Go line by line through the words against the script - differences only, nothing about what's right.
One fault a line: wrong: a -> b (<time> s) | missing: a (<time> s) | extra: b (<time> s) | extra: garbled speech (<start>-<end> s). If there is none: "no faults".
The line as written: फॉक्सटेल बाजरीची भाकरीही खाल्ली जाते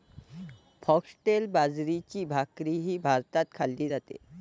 extra: भारतात (3.0 s)